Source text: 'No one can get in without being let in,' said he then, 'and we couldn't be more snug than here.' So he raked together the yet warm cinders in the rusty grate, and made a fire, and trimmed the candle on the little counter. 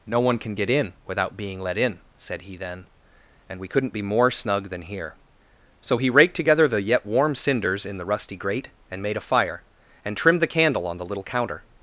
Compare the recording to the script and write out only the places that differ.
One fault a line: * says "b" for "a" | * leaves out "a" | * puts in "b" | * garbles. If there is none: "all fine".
all fine